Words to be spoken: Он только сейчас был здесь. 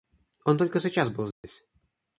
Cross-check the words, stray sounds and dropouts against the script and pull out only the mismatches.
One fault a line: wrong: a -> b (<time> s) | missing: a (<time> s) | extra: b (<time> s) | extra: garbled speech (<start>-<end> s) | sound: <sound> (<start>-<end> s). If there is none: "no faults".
sound: dropout (1.3-1.4 s)